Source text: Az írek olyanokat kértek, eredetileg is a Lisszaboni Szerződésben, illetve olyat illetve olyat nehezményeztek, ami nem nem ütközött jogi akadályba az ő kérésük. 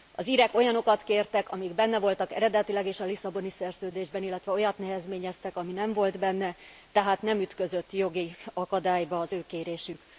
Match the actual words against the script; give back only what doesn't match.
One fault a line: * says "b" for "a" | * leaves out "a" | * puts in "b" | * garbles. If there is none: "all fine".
* puts in "amik benne voltak"
* leaves out "illetve olyat"
* puts in "volt benne tehát"